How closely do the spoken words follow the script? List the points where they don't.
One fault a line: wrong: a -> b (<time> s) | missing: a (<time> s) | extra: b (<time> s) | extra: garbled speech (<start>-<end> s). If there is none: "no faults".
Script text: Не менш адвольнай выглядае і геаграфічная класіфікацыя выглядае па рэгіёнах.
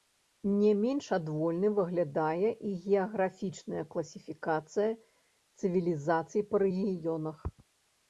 wrong: выглядае -> цывілізацый (5.6 s)